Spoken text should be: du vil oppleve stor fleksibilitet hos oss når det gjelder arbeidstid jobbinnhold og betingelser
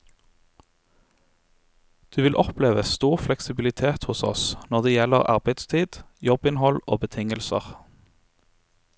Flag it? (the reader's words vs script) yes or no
no